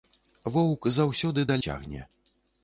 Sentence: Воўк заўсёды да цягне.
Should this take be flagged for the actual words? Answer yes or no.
no